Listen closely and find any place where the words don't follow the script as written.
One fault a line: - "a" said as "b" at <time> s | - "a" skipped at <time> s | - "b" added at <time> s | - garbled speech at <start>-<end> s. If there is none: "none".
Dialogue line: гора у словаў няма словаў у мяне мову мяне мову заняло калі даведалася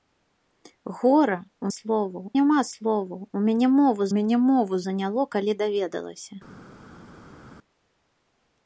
none